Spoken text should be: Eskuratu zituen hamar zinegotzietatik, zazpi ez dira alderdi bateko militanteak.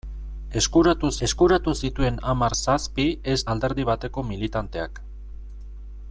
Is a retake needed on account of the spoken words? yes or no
yes